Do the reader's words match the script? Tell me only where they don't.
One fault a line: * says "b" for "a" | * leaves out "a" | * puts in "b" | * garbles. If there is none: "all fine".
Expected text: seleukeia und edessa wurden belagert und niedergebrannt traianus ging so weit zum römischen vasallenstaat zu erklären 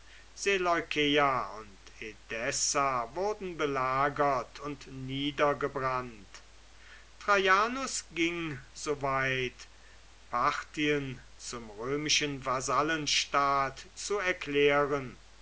* puts in "parthien"